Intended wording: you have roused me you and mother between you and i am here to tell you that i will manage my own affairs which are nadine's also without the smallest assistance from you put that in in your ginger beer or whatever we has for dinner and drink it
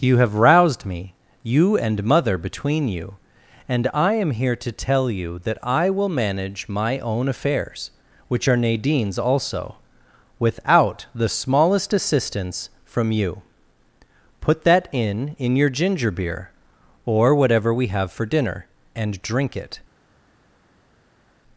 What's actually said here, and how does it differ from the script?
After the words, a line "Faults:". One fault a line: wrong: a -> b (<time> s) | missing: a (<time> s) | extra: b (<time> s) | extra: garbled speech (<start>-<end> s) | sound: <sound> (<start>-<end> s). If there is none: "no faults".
you have roused me you and mother between you and i am here to tell you that i will manage my own affairs which are nadine's also without the smallest assistance from you put that in in your ginger beer or whatever we have for dinner and drink it
Faults:
wrong: has -> have (17.9 s)